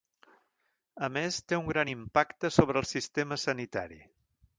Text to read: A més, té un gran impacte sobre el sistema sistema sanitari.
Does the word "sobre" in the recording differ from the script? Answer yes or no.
no